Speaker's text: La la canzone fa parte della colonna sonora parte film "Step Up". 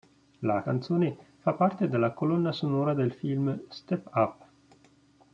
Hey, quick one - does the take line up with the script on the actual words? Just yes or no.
no